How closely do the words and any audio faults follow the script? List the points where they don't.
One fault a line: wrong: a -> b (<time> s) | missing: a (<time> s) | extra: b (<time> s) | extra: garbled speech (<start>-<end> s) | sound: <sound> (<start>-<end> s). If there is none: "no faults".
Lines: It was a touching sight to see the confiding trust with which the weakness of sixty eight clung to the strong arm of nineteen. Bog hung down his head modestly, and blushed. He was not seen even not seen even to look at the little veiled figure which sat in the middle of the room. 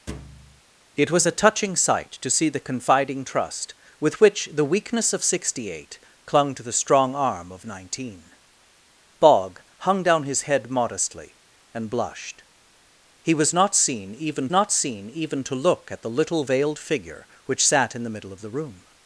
sound: thud (0.1-0.6 s)